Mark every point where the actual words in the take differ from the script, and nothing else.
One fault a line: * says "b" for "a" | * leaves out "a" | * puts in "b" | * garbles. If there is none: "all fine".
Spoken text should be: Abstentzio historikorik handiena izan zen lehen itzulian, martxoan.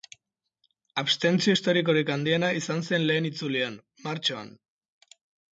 all fine